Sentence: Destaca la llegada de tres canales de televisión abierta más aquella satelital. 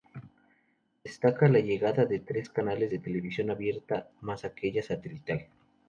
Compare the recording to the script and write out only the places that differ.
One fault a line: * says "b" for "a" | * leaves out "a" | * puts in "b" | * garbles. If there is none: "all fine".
all fine